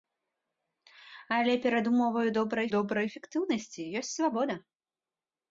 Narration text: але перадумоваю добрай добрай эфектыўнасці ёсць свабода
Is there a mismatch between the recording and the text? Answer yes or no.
no